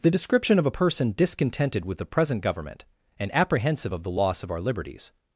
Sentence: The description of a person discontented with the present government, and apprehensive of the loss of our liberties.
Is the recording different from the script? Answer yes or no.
no